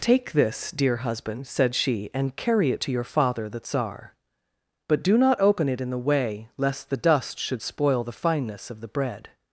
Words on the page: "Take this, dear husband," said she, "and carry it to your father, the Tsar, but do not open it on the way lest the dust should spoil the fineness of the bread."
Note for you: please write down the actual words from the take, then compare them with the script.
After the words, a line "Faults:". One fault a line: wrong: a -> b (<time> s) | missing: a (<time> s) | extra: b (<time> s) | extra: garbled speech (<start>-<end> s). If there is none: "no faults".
"Take this, dear husband," said she, "and carry it to your father, the Tsar, but do not open it in the way lest the dust should spoil the fineness of the bread."
Faults:
wrong: on -> in (5.8 s)